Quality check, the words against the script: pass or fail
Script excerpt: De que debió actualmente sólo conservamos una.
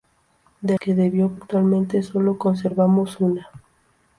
pass